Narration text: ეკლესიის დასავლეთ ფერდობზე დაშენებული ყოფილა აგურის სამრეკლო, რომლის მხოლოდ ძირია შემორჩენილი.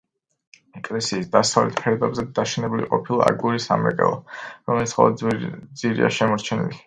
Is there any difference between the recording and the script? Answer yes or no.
no